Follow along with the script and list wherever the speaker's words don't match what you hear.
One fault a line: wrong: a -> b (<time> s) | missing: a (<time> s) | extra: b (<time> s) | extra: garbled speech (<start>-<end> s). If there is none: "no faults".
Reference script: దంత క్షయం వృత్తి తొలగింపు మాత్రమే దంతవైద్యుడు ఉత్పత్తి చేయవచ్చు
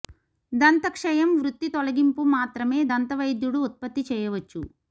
no faults